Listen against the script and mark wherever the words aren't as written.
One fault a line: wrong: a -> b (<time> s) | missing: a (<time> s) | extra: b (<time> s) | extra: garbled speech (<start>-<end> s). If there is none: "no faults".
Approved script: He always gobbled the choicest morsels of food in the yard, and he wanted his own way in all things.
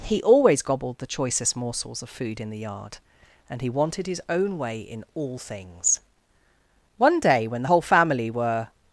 extra: One day when the whole family were (7.0 s)